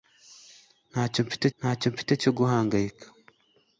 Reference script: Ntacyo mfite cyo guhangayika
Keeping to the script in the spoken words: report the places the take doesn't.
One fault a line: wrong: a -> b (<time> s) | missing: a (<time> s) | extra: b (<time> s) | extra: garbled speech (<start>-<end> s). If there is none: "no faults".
extra: ntacyo mfite (1.6 s)